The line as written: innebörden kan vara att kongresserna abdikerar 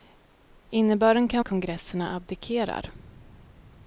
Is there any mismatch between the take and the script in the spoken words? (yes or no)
yes